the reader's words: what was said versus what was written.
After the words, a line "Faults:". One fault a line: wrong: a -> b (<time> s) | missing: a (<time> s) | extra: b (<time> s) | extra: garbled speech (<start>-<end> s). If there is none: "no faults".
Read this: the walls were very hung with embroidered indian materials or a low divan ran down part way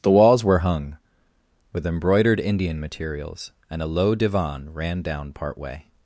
the walls were hung with embroidered indian materials and a low divan ran down part way
Faults:
missing: very (0.6 s)
wrong: or -> and (3.7 s)